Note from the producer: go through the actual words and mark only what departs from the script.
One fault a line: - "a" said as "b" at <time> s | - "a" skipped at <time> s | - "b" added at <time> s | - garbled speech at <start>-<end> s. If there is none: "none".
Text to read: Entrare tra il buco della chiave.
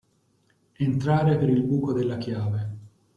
- "tra" said as "per" at 1.3 s